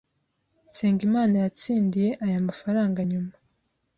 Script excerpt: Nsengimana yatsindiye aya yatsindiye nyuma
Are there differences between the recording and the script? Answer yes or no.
yes